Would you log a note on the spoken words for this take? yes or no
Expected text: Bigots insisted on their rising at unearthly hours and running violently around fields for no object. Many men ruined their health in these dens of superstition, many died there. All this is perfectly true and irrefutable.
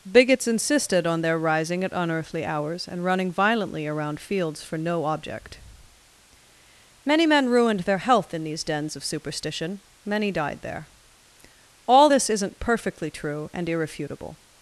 yes